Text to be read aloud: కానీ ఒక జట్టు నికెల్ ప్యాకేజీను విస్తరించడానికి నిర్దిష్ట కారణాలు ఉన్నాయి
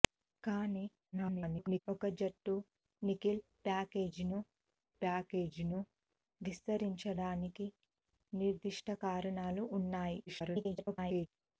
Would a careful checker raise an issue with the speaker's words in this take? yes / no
yes